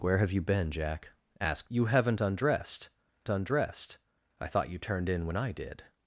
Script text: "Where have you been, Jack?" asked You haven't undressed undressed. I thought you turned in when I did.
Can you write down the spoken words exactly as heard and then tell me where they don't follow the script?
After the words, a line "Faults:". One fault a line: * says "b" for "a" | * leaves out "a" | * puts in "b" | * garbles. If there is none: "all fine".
"Where have you been, Jack?" asked You haven't undressed undressed. I thought you turned in when I did.
Faults:
all fine